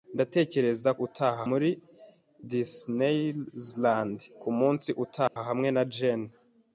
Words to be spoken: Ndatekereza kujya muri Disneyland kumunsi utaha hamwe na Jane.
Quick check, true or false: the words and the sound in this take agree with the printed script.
false